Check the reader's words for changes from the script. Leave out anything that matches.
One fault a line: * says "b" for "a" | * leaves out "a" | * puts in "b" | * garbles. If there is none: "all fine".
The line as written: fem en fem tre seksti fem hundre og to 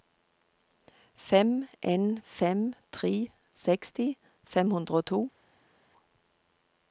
all fine